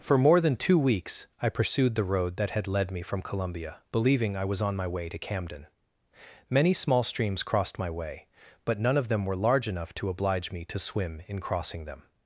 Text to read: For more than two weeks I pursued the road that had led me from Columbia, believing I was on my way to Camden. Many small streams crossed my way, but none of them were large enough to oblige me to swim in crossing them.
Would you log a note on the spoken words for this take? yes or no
no